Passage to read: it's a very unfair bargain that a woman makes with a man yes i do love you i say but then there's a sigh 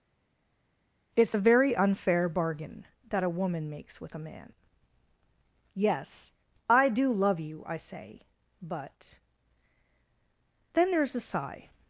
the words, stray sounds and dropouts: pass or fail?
pass